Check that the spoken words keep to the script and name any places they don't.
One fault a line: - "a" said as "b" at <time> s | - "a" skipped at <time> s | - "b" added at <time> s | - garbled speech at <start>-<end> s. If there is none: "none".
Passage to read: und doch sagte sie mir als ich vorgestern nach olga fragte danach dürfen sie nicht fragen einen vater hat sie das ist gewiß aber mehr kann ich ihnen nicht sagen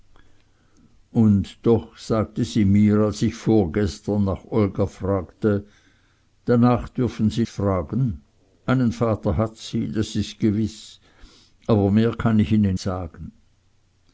- "nicht" skipped at 7.5 s
- "nicht" skipped at 12.8 s